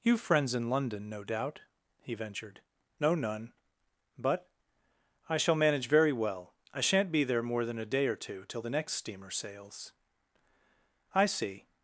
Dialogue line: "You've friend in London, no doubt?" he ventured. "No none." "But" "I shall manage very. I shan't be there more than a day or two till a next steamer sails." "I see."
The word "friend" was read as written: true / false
false